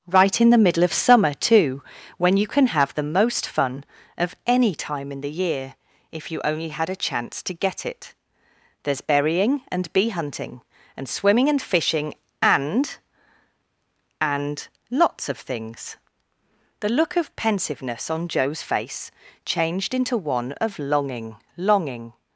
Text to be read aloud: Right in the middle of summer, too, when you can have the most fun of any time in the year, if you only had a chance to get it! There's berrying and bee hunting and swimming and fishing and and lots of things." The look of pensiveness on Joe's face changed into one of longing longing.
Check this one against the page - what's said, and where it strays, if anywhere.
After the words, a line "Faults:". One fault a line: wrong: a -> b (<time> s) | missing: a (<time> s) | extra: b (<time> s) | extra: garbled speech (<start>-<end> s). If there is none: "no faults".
Right in the middle of summer, too, when you can have the most fun of any time in the year, if you only had a chance to get it! There's berrying and bee hunting and swimming and fishing and and lots of things." The look of pensiveness on Joe's face changed into one of longing longing.
Faults:
no faults